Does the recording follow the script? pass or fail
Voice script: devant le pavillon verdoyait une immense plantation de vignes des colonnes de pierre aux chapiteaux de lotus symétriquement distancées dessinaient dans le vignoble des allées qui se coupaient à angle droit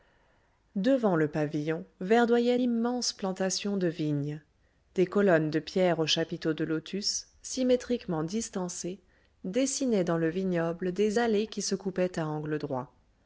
fail